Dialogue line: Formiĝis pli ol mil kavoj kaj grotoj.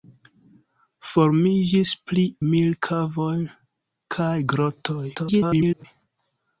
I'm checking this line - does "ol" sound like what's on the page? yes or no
no